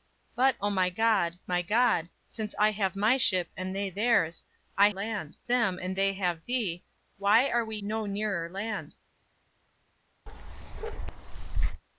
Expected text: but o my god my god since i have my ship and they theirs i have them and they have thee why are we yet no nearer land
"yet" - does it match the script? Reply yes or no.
no